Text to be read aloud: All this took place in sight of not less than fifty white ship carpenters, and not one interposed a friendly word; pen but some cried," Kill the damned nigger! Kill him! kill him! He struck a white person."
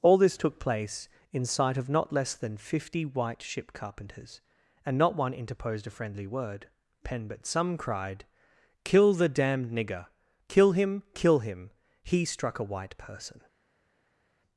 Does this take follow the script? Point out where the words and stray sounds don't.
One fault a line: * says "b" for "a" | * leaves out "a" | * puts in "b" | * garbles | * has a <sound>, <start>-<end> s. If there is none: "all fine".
all fine